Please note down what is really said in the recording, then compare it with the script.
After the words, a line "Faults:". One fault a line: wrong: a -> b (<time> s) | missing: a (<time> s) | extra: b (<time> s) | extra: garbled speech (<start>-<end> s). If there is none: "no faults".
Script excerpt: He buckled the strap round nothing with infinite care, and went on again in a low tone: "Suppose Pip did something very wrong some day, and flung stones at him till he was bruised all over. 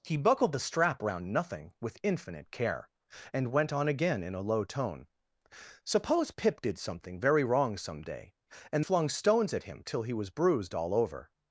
He buckled the strap round nothing with infinite care, and went on again in a low tone: "Suppose Pip did something very wrong some day, and flung stones at him till he was bruised all over.
Faults:
no faults